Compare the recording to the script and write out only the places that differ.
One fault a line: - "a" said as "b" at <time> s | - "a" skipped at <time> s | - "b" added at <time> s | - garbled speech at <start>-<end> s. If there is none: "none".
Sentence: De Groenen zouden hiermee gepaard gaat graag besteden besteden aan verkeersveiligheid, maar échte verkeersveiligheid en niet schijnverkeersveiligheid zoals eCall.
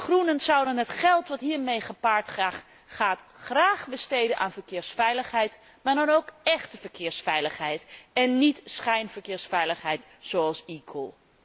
- "het geld dat" added at 0.8 s
- "besteden" skipped at 4.4 s
- "dan ook" added at 5.9 s